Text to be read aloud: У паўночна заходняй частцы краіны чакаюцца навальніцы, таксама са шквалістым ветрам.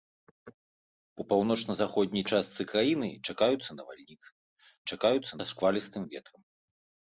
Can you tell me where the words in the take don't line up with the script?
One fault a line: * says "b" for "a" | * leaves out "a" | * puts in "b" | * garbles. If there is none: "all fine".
* says "чакаюцца" for "таксама"